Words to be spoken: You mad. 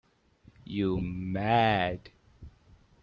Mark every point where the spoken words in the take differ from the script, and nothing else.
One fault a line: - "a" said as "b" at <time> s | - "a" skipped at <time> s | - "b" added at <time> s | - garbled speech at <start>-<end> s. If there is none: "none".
none